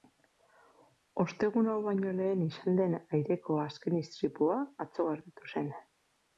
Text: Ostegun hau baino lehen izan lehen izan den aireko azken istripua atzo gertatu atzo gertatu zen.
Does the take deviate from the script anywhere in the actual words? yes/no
yes